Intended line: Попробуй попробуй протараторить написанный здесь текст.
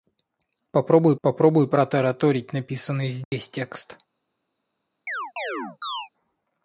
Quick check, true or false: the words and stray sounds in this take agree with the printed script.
false